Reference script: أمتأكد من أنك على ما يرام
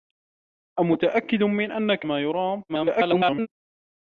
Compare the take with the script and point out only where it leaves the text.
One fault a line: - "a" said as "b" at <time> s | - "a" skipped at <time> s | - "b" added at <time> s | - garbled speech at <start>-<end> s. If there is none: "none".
- "على" skipped at 2.0 s
- garbled speech at 2.7-3.5 s